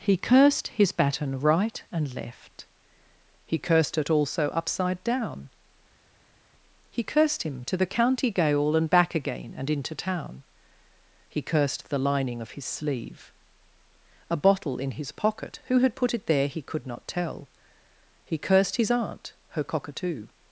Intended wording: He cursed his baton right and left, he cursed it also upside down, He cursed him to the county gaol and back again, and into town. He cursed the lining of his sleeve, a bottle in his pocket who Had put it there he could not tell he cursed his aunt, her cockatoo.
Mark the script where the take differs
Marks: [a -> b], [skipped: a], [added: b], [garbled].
He cursed his baton right and left, he cursed it also upside down, He cursed him to the county gaol and back again, and into town. He cursed the lining of his sleeve, a bottle in his pocket who Had put it there he could not tell he cursed his aunt, her cockatoo.